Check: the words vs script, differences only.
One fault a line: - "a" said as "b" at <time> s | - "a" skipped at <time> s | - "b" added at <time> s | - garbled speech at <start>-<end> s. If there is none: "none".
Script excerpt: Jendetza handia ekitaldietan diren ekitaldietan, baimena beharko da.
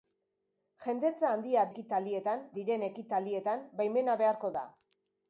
none